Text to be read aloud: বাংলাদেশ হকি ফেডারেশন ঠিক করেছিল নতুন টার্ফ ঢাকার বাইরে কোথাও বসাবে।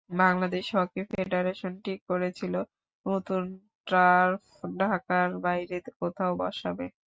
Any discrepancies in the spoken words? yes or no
no